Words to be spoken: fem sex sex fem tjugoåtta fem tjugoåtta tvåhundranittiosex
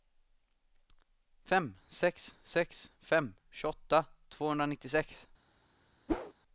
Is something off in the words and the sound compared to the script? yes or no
yes